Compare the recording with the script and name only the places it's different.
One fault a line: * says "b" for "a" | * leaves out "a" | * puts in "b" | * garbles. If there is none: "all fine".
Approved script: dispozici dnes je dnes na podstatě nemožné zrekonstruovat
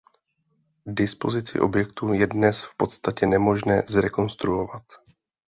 * says "objektu" for "dnes"
* says "v" for "na"